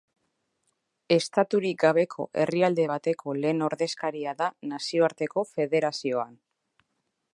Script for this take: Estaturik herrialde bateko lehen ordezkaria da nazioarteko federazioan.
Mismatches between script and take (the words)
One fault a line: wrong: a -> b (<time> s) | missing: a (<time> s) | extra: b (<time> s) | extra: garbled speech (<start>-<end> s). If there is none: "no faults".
extra: gabeko (1.8 s)